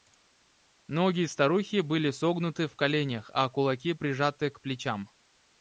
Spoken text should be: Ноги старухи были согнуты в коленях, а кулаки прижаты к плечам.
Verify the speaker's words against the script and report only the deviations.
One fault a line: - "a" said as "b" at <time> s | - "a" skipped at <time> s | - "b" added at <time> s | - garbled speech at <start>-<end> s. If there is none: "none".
none